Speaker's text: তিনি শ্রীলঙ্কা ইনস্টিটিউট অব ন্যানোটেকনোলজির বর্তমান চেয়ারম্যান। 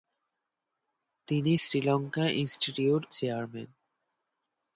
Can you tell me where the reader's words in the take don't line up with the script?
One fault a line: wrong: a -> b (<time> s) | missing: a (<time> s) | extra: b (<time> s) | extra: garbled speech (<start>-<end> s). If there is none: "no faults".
missing: অব ন্যানোটেকনোলজির বর্তমান (3.0 s)